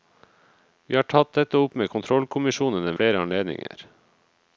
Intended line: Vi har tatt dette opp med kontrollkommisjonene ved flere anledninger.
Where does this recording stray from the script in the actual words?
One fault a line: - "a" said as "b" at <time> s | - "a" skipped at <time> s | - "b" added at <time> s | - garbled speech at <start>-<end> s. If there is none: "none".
- "ved" skipped at 3.0 s